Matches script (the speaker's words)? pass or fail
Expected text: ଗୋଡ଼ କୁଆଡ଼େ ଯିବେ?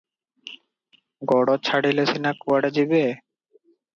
fail